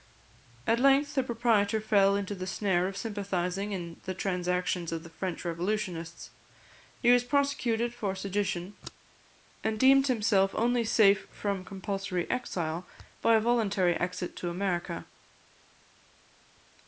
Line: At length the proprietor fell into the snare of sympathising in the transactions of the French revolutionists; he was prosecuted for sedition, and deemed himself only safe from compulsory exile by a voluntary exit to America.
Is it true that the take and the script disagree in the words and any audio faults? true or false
false